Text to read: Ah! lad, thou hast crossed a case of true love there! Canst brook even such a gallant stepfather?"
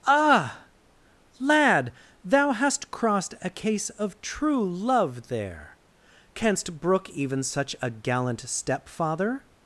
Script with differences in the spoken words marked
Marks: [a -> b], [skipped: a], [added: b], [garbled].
Ah! lad, thou hast crossed a case of true love there! Canst brook even such a gallant stepfather?"